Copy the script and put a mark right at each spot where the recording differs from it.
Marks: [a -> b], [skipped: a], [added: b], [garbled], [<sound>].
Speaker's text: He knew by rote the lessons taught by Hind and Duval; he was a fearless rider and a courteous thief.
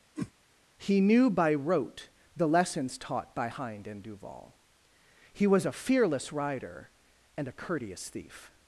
[whoosh] He knew by rote the lessons taught by Hind and Duval; he was a fearless rider and a courteous thief.